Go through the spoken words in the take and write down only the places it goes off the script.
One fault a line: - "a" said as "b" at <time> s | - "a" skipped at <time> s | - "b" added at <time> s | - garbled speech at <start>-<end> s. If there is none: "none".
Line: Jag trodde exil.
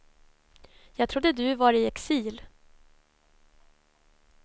- "du var i" added at 1.3 s